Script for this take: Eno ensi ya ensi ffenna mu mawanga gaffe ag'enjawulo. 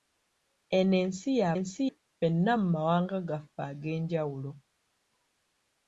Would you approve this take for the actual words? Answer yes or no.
yes